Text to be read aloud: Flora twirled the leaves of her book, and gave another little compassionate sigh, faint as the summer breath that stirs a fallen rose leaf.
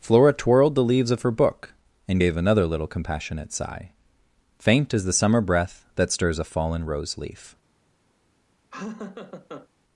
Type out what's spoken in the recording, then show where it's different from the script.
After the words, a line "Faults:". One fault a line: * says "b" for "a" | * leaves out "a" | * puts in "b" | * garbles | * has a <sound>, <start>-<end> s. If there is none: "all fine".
Flora twirled the leaves of her book, and gave another little compassionate sigh, faint as the summer breath that stirs a fallen rose leaf.
Faults:
* has a laugh, 8.7-9.7 s